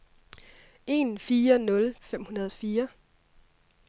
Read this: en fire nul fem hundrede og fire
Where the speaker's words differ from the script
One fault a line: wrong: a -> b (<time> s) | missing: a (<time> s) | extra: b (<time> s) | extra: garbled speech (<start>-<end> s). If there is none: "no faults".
no faults